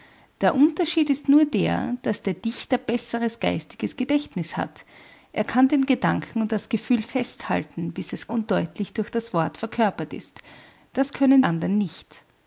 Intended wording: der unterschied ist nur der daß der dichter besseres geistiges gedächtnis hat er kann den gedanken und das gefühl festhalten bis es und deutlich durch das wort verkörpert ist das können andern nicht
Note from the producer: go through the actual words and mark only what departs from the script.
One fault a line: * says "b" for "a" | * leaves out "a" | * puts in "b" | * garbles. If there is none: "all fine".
all fine